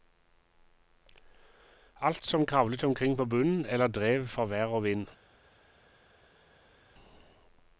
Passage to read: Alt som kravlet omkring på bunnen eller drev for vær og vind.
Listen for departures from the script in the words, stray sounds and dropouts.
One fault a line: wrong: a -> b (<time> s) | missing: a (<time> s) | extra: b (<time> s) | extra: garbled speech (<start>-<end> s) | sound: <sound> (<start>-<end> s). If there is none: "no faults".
no faults